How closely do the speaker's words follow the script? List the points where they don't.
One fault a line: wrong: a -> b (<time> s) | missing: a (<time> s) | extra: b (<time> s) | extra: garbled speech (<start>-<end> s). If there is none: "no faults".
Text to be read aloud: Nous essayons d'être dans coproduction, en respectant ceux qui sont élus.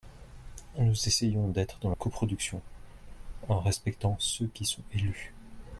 no faults